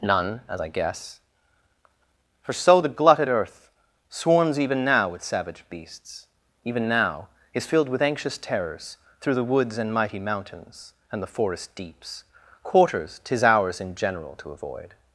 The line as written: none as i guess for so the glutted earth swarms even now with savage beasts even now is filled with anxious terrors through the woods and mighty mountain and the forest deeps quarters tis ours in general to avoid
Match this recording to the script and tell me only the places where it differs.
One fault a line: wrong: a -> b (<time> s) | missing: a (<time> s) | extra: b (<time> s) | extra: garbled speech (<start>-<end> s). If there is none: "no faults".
wrong: mountain -> mountains (10.2 s)